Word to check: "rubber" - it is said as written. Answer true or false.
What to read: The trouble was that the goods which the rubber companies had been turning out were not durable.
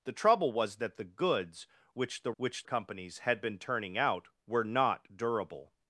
false